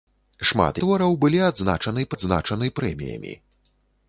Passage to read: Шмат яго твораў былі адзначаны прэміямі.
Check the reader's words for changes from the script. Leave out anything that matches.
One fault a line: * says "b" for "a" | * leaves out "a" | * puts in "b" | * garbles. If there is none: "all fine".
* leaves out "яго"
* puts in "адзначаны"